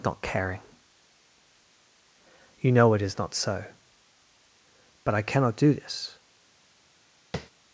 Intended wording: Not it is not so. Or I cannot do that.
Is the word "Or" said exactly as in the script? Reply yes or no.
no